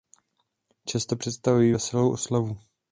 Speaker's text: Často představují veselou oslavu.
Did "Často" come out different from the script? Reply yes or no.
no